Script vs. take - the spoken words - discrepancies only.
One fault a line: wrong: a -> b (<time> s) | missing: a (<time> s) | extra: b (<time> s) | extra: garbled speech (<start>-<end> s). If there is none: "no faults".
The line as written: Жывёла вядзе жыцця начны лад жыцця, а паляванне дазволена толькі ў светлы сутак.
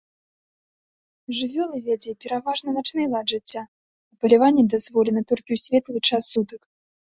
wrong: жыцця -> пераважна (2.2 s)
extra: час (6.1 s)